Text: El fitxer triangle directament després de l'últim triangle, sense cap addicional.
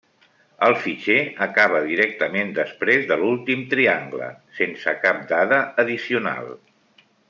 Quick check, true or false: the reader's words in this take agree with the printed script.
false